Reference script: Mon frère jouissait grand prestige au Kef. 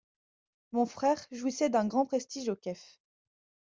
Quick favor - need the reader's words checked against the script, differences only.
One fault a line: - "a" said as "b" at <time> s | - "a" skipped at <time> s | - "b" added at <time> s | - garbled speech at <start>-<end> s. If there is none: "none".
- "d'un" added at 1.7 s